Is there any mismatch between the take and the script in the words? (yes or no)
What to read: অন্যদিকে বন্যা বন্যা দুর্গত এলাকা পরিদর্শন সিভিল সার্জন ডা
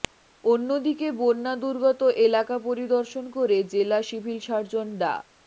yes